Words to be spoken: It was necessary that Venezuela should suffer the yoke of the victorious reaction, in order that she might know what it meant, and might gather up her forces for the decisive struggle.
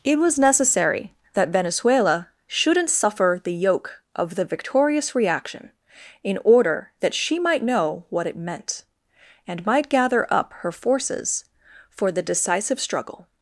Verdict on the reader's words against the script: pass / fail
fail